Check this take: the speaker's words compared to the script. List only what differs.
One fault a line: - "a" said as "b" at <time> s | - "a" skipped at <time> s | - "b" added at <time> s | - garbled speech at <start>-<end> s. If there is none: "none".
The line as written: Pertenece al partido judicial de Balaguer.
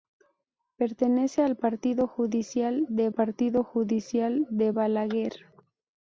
- "partido judicial de" added at 3.1 s